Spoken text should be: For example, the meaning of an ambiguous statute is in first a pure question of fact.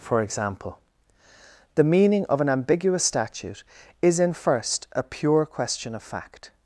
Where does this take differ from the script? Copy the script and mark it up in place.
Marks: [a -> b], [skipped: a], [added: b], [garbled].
For example, the meaning of an ambiguous statute is in first a pure question of fact.